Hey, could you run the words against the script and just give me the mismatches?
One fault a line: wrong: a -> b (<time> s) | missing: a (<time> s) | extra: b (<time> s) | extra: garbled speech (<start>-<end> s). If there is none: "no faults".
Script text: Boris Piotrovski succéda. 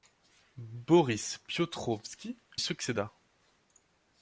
no faults